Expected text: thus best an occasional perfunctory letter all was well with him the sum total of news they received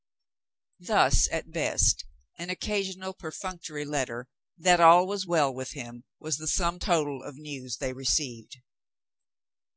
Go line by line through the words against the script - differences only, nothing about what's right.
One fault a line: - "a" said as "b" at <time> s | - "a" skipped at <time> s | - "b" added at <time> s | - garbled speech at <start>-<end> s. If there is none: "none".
- "at" added at 1.3 s
- "that" added at 4.6 s
- "was" added at 6.2 s